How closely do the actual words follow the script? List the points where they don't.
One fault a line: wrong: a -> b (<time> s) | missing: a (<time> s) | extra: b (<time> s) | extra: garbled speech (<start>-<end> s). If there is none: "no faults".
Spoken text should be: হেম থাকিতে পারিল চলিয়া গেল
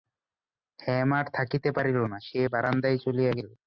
extra: আর (1.1 s)
extra: না সে বারান্দায় (2.0 s)